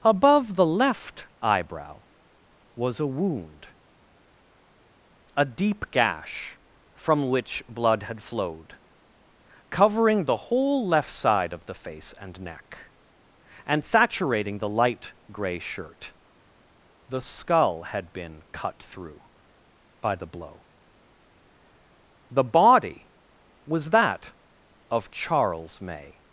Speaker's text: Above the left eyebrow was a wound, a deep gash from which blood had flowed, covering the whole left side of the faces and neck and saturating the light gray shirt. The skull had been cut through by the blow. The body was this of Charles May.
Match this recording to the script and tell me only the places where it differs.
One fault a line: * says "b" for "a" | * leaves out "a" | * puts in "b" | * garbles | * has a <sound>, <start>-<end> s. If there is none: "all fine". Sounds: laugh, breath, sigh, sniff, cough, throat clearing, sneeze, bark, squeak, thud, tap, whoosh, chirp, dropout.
* says "face" for "faces"
* says "that" for "this"